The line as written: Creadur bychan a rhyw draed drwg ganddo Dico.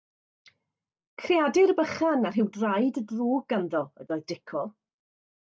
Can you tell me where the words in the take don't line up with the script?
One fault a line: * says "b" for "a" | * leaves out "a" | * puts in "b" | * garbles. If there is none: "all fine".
* puts in "ydoedd"